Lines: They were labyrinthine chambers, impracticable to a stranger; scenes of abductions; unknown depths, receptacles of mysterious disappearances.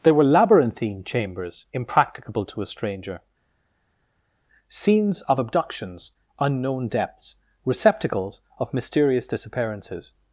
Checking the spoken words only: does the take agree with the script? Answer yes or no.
yes